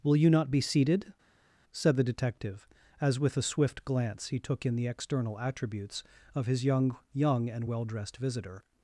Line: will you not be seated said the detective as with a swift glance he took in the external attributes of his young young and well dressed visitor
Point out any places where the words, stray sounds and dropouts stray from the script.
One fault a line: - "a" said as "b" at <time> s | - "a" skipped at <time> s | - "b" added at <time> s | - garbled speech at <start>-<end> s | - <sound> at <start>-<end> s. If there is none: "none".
none